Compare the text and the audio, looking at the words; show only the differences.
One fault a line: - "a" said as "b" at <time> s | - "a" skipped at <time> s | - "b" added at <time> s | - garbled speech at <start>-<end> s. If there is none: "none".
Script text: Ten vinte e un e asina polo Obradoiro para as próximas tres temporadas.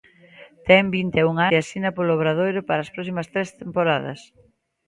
none